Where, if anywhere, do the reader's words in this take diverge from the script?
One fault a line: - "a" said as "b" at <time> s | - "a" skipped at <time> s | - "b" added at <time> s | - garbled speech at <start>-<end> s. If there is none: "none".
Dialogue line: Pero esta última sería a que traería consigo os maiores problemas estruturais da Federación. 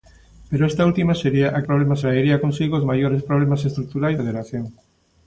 - "que" said as "problemas" at 1.7 s
- "da" skipped at 4.2 s